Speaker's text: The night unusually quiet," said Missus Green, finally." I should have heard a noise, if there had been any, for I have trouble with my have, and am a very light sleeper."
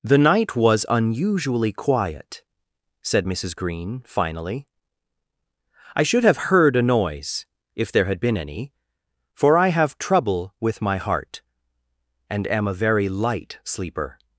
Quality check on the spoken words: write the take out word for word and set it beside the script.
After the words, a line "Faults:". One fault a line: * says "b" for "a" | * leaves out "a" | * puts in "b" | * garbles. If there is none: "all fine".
The night was unusually quiet," said Missus Green, finally." I should have heard a noise, if there had been any, for I have trouble with my heart, and am a very light sleeper."
Faults:
* puts in "was"
* says "heart" for "have"